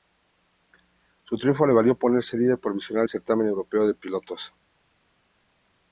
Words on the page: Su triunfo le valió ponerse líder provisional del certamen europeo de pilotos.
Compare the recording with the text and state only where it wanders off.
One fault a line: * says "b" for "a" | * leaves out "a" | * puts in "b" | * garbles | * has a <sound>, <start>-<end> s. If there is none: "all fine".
all fine